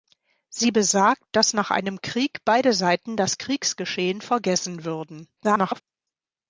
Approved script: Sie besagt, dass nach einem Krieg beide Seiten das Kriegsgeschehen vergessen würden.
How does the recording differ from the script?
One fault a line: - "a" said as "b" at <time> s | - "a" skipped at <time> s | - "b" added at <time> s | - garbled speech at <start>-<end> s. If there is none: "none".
- garbled speech at 5.4-5.8 s